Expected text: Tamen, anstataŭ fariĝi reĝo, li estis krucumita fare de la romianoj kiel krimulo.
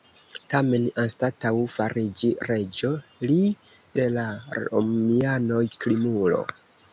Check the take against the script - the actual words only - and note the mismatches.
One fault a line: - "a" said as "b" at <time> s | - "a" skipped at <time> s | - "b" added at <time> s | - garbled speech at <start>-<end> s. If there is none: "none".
- "estis krucumita fare" skipped at 3.4 s
- "kiel" skipped at 5.6 s